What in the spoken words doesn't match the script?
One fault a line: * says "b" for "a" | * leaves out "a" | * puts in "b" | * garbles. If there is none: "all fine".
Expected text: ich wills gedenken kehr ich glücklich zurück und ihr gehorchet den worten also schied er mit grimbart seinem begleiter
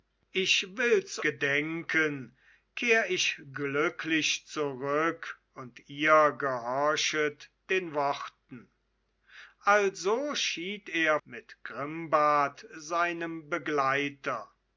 all fine